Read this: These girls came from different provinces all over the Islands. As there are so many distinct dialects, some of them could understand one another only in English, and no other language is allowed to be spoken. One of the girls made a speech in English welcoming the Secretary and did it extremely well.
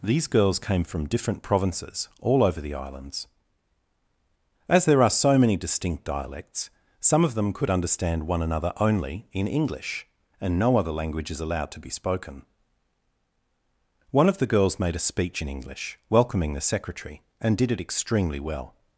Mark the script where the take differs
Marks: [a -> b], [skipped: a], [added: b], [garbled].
These girls came from different provinces all over the Islands. As there are so many distinct dialects, some of them could understand one another only in English, and no other language is allowed to be spoken. One of the girls made a speech in English welcoming the Secretary and did it extremely well.